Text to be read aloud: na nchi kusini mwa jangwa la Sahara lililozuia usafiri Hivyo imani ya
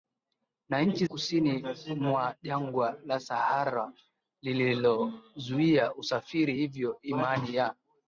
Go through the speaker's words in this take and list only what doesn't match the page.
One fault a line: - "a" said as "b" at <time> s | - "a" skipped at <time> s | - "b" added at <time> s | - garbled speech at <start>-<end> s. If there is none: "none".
none